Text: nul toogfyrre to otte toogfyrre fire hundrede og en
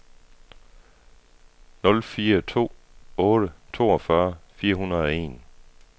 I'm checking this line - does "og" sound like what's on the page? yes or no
yes